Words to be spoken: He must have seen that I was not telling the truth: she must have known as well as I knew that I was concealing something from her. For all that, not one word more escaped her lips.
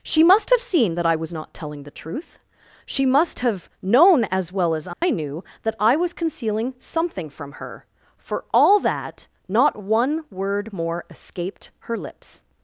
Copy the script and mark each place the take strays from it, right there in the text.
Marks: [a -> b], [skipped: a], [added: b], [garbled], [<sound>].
[He -> She] must have seen that I was not telling the truth: she must have known as well as I [dropout] knew that I was concealing something from her. For all that, not one word more escaped her lips.